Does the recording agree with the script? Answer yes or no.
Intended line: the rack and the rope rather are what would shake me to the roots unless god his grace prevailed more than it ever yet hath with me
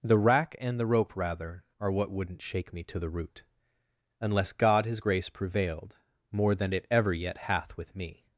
no